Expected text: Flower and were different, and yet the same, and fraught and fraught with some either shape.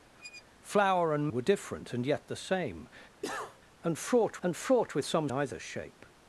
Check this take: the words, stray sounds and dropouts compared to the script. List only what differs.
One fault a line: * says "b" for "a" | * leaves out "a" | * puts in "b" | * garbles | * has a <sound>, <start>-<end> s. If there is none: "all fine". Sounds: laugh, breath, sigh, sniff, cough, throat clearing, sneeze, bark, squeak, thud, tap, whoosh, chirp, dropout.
* has a squeak, 0.1-0.4 s
* has a cough, 3.2-3.6 s